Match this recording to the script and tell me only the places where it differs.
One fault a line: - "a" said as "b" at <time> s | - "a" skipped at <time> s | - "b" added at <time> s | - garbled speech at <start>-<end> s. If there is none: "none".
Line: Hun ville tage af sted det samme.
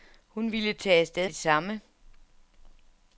none